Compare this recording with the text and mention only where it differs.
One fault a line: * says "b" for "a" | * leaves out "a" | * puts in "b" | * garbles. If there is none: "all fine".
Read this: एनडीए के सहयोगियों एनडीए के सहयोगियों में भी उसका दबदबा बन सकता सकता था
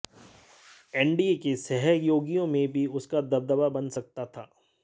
* leaves out "एनडीए के सहयोगियों"
* leaves out "सकता"